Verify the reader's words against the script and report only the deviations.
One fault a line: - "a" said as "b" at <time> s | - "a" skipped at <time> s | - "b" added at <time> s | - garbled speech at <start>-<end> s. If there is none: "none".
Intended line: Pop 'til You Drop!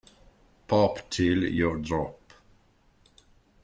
none